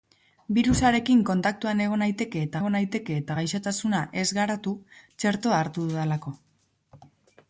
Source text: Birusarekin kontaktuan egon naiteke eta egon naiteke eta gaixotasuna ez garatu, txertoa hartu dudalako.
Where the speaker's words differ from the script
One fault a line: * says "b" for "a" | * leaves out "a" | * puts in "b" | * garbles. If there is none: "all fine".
all fine